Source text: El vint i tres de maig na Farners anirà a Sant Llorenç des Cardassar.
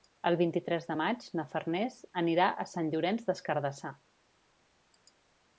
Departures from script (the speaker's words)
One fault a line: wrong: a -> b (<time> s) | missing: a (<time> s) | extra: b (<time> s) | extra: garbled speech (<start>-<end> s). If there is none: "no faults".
no faults